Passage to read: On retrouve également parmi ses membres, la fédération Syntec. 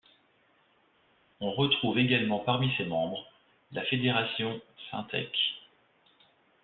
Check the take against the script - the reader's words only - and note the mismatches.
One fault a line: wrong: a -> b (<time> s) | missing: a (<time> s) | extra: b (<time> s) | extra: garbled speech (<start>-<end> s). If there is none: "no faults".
no faults